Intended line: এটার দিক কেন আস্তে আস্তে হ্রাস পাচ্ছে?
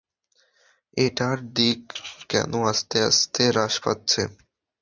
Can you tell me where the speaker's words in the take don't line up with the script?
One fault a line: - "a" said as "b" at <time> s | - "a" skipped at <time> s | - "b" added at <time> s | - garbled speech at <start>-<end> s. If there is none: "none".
none